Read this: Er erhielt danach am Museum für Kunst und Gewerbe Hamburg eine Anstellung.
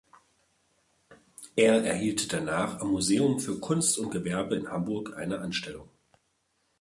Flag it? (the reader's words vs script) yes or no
yes